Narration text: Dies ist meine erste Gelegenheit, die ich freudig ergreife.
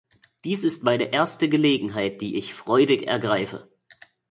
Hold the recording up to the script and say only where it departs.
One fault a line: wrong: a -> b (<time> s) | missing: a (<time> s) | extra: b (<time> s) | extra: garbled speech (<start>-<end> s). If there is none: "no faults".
no faults